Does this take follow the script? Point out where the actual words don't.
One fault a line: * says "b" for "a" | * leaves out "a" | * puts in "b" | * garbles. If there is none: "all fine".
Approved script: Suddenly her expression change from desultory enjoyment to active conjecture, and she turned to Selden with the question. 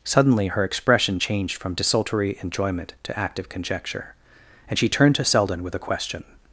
* says "changed" for "change"
* says "a" for "the"